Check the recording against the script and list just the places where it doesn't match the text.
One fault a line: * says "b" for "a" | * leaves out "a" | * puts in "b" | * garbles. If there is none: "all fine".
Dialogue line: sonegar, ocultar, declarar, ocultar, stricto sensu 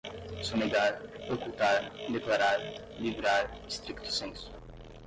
* says "livrar" for "ocultar"